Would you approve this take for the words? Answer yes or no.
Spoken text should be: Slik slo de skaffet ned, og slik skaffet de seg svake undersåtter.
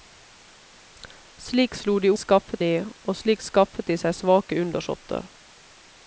yes